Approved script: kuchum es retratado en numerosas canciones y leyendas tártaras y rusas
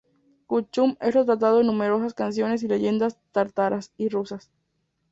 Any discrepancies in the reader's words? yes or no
no